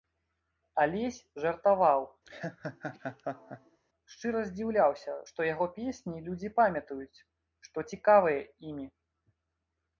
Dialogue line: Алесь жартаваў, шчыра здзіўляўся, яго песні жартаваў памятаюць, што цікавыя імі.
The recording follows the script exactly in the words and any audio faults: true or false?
false